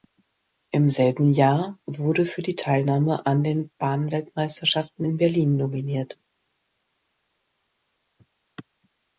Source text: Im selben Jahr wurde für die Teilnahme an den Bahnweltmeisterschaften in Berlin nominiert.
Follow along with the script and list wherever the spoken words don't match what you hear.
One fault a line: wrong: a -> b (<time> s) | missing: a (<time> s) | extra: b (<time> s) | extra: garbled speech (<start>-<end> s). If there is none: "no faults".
no faults